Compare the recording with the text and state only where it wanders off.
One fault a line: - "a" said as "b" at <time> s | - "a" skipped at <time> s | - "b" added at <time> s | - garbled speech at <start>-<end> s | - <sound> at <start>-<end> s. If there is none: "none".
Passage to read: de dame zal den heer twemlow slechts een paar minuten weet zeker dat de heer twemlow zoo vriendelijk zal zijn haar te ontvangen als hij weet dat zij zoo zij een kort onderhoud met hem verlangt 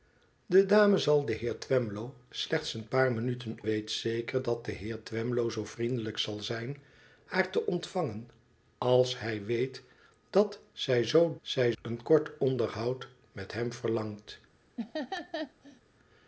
- laugh at 14.8-15.8 s